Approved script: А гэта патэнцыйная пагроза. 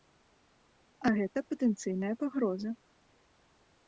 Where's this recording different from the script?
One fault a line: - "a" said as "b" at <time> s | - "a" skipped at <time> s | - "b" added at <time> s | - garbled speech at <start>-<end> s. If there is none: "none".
none